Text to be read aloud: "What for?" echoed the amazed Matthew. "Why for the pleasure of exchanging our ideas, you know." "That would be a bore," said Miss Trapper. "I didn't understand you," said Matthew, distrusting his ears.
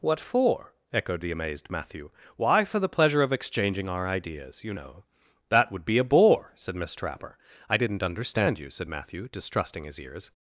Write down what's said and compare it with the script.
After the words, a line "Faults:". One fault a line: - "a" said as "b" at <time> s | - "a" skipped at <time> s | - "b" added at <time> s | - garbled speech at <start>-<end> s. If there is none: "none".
"What for?" echoed the amazed Matthew. "Why for the pleasure of exchanging our ideas, you know." "That would be a bore," said Miss Trapper. "I didn't understand you," said Matthew, distrusting his ears.
Faults:
none